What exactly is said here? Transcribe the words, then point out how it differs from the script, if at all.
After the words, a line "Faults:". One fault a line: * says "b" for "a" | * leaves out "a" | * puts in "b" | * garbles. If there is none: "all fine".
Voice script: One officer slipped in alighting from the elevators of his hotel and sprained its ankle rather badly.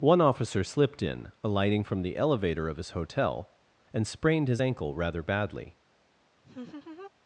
One officer slipped in alighting from the elevator of his hotel and sprained his ankle rather badly.
Faults:
* says "elevator" for "elevators"
* says "his" for "its"